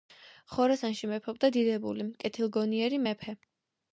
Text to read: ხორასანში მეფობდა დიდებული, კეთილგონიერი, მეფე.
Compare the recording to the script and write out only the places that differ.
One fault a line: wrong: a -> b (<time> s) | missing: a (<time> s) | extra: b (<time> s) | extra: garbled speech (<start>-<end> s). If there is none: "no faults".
no faults